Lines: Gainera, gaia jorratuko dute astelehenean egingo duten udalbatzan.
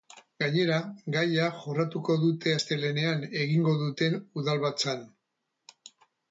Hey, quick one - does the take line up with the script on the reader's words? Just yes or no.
yes